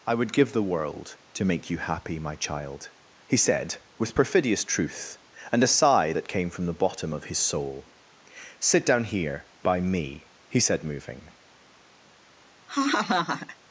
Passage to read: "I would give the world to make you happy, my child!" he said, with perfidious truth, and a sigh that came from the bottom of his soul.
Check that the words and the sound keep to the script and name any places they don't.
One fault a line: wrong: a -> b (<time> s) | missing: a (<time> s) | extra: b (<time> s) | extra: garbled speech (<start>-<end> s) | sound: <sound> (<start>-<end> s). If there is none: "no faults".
extra: Sit down here by me he said moving (8.6 s)
sound: laugh (12.7-13.6 s)